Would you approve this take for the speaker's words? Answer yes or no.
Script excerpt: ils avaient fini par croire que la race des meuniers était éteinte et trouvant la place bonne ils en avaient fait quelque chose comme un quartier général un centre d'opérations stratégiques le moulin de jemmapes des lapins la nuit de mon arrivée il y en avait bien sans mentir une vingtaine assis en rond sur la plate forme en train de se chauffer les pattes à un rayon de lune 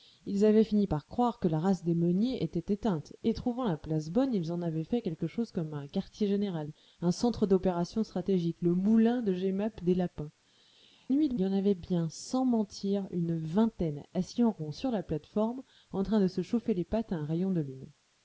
no